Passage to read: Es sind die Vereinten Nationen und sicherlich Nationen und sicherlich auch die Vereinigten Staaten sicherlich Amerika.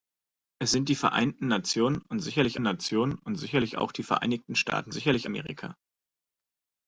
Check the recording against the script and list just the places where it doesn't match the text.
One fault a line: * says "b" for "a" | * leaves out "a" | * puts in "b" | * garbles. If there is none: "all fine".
all fine